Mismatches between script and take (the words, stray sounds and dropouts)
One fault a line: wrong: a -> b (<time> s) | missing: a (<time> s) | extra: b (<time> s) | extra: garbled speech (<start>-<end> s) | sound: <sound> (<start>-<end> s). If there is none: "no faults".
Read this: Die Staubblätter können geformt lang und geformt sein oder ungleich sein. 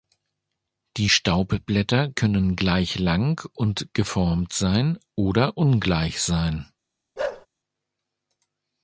wrong: geformt -> gleich (2.5 s)
sound: bark (7.2-7.5 s)